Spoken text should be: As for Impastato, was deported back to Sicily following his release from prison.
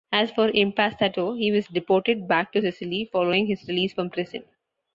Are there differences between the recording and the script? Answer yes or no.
yes